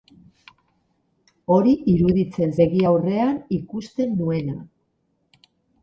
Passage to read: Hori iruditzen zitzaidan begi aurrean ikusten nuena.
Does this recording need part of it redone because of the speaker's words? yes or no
yes